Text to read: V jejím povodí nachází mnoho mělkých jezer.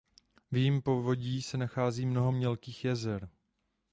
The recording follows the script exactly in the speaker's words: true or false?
false